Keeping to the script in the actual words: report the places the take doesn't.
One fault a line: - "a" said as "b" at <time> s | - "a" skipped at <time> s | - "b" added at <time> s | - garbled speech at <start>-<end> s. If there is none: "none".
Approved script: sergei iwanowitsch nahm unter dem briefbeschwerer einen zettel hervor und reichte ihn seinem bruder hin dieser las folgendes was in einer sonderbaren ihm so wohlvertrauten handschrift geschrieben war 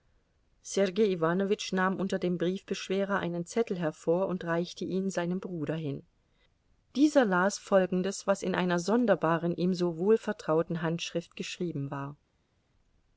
none